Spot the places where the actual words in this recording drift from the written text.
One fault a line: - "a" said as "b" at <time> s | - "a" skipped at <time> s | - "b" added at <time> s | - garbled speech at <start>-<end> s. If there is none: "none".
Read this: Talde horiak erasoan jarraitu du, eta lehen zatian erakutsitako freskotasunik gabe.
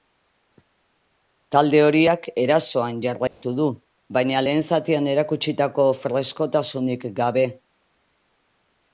- "eta" said as "baina" at 4.2 s